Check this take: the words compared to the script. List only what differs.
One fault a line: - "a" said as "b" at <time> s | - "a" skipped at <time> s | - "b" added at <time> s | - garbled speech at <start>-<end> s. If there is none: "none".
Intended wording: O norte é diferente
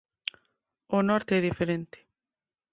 none